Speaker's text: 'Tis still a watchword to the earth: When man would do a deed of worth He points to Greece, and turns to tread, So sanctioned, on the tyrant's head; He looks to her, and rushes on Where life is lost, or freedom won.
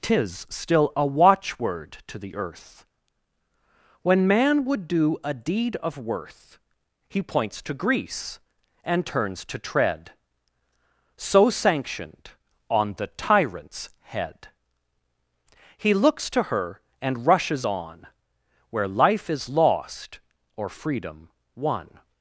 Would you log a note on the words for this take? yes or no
no